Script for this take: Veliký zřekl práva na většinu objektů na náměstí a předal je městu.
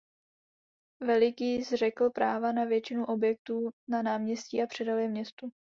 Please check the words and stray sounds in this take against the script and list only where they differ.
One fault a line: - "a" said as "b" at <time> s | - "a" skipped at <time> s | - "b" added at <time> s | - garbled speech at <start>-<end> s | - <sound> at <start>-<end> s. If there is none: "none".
none